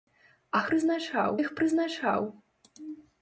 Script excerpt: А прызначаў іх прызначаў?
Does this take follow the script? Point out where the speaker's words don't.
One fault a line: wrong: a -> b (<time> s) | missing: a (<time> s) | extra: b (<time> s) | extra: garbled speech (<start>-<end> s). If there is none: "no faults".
no faults